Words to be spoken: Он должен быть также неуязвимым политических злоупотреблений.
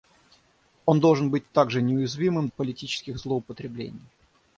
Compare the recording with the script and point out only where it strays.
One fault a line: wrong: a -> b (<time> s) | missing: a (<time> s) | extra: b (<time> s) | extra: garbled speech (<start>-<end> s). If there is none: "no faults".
no faults